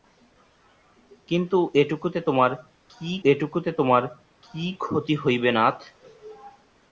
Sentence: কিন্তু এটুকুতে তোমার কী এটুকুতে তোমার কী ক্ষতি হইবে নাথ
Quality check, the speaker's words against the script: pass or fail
pass